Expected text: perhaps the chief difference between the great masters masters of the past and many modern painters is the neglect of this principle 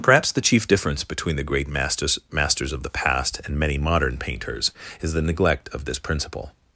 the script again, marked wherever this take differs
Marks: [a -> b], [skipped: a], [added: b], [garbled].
perhaps the chief difference between the great masters masters of the past and many modern painters is the neglect of this principle